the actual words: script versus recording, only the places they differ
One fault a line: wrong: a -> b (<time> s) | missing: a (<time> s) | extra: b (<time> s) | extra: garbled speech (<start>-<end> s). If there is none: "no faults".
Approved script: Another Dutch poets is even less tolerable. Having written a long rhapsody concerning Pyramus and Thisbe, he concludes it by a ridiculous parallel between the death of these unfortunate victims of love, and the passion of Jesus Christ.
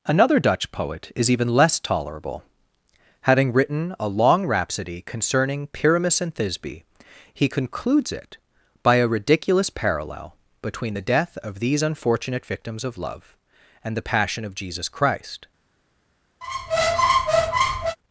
wrong: poets -> poet (0.7 s)